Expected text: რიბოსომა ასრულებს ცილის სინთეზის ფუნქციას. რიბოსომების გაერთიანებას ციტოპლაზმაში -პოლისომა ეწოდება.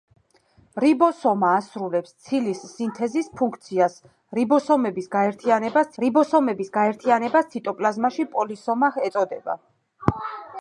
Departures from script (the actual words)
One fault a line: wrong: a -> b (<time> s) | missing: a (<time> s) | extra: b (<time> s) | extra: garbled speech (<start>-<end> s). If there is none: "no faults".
extra: რიბოსომების გაერთიანებას (6.0 s)